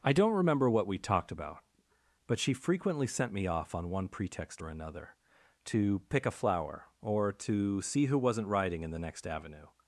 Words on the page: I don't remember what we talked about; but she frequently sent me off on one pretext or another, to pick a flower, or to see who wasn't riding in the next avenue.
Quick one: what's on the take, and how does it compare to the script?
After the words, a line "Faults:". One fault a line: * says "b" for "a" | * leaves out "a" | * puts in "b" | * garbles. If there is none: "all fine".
I don't remember what we talked about; but she frequently sent me off on one pretext or another, to pick a flower, or to see who wasn't riding in the next avenue.
Faults:
all fine